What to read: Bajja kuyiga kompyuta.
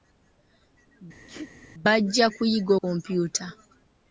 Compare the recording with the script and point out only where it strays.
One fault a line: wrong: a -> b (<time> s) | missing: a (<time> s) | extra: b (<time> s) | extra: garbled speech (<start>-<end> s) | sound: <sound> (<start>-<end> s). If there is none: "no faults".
sound: sneeze (1.3-1.5 s)